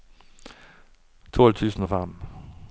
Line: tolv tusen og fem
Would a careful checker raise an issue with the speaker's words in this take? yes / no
no